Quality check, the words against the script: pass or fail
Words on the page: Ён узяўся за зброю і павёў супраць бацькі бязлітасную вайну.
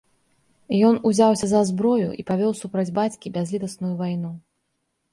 pass